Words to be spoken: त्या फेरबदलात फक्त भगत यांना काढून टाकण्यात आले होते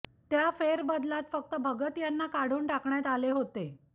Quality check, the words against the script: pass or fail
pass